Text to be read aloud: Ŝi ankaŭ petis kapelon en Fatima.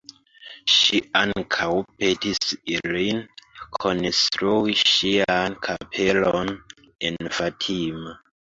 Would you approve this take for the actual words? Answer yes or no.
no